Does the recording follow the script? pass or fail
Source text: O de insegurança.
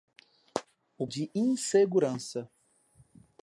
pass